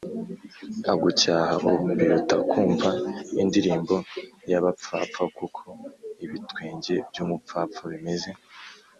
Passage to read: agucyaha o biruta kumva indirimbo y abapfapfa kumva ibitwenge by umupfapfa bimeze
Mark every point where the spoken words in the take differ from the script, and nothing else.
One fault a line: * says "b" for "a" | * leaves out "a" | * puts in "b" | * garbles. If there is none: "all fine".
* says "kuko" for "kumva"